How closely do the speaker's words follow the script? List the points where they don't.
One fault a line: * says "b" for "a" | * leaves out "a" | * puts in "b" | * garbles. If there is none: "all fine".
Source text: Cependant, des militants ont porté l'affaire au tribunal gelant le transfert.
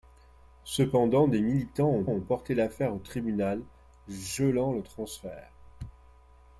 * puts in "ont"